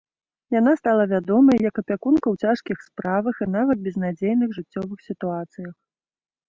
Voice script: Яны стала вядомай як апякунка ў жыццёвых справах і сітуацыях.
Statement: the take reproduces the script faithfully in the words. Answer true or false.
false